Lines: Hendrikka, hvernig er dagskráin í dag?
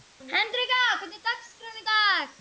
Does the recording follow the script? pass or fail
pass